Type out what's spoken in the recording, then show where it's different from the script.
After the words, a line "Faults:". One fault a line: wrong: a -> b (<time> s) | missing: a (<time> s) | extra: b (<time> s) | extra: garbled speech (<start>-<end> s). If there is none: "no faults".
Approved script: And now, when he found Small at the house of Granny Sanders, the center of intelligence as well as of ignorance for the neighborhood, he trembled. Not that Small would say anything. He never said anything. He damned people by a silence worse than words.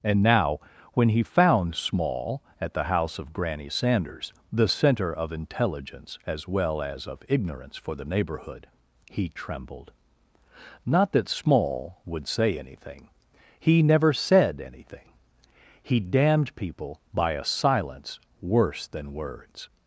And now, when he found Small at the house of Granny Sanders, the center of intelligence as well as of ignorance for the neighborhood, he trembled. Not that Small would say anything. He never said anything. He damned people by a silence worse than words.
Faults:
no faults